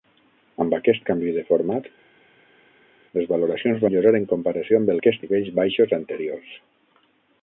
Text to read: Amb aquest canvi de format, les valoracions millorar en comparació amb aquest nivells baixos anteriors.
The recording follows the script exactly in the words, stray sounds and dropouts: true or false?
true